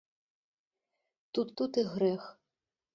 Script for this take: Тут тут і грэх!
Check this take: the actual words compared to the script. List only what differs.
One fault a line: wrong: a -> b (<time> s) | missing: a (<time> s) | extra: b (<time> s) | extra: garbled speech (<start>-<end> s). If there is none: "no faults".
no faults